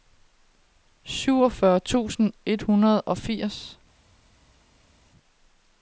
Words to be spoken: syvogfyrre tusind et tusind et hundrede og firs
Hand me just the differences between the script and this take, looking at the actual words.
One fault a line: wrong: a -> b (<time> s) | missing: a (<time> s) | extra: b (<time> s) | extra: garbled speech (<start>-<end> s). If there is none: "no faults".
missing: tusind et (2.6 s)